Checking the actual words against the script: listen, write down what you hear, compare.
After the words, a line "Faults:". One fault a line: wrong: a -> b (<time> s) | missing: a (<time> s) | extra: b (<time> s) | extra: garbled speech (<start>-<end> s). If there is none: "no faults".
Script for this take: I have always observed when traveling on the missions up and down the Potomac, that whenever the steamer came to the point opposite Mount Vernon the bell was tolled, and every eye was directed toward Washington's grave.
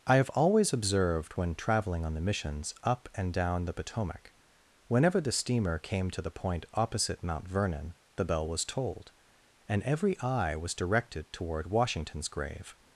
I have always observed when traveling on the missions up and down the Potomac, whenever the steamer came to the point opposite Mount Vernon the bell was tolled, and every eye was directed toward Washington's grave.
Faults:
missing: that (4.3 s)